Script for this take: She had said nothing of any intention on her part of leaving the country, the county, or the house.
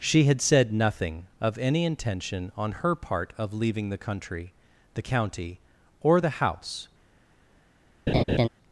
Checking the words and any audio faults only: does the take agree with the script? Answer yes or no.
no